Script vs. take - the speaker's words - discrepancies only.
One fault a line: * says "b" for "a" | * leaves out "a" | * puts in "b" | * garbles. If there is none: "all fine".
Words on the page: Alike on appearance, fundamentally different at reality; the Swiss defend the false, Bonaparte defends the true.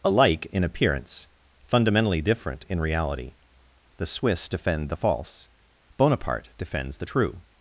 * says "in" for "on"
* says "in" for "at"